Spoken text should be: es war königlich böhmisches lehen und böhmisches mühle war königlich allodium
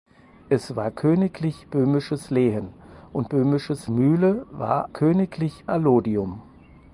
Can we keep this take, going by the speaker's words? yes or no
yes